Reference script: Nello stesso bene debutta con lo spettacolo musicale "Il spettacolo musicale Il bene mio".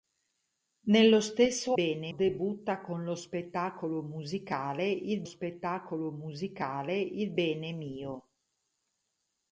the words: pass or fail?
pass